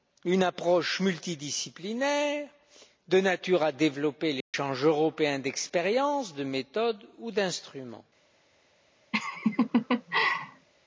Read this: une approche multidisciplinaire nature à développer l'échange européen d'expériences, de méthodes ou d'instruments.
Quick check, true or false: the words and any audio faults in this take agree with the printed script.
false